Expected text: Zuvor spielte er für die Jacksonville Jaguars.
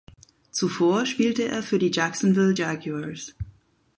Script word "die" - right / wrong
right